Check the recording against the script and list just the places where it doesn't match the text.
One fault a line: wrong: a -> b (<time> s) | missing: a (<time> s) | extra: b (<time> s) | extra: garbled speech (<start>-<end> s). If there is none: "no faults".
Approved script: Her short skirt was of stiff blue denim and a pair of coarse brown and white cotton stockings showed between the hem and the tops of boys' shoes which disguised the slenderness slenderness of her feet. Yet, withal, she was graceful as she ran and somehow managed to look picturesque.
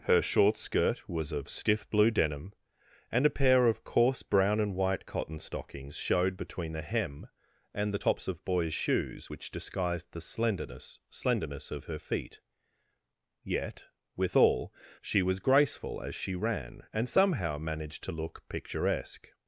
no faults